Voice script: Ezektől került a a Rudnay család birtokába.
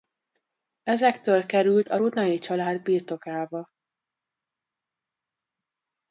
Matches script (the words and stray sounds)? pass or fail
fail